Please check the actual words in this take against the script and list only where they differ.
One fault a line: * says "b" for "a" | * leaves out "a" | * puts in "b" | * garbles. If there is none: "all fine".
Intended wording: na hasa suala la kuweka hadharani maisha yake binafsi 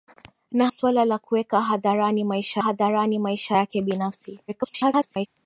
* leaves out "hasa"
* puts in "hadharani maisha"
* garbles